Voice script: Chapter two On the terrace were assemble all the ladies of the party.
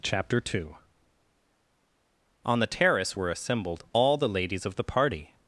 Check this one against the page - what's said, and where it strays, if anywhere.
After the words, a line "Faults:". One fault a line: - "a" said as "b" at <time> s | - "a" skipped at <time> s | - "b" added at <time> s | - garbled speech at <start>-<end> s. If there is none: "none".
Chapter two On the terrace were assembled all the ladies of the party.
Faults:
- "assemble" said as "assembled" at 3.3 s